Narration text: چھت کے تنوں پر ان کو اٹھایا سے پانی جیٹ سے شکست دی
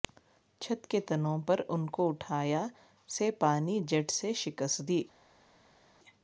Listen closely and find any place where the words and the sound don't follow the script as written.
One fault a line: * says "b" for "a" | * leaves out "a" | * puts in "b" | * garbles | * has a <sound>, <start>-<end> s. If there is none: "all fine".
all fine